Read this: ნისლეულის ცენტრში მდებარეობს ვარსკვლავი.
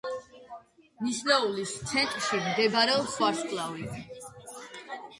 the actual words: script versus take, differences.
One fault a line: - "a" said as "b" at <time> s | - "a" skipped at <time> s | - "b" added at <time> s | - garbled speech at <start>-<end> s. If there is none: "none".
none